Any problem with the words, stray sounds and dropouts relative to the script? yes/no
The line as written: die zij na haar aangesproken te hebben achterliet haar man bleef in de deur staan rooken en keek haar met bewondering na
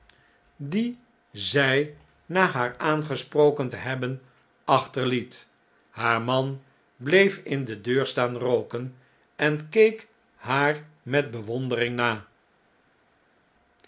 no